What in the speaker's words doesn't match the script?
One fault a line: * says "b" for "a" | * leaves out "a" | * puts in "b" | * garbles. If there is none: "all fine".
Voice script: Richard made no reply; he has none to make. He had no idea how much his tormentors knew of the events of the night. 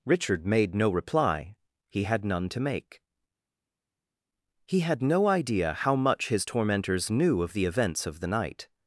* says "had" for "has"